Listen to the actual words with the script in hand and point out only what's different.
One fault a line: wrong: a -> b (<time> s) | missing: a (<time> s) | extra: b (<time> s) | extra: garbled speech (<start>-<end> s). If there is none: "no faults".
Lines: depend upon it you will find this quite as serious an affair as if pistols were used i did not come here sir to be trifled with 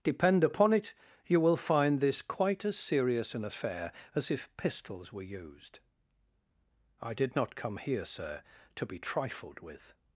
no faults